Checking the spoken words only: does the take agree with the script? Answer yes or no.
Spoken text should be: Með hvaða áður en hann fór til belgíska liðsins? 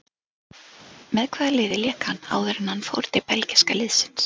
no